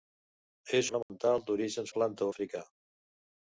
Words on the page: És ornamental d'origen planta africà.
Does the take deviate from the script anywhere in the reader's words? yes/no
no